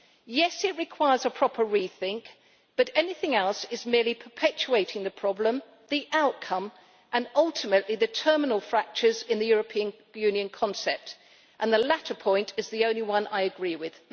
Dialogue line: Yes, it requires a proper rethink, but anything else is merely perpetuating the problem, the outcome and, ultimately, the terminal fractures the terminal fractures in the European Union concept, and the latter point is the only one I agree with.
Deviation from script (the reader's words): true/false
true